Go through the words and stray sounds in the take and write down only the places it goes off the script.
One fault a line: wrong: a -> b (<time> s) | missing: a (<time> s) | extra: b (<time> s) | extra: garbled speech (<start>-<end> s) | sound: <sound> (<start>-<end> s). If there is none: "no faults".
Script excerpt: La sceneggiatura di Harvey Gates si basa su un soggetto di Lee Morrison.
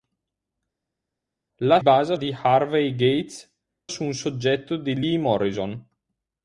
wrong: sceneggiatura -> basa (1.8 s)
missing: si basa (3.5 s)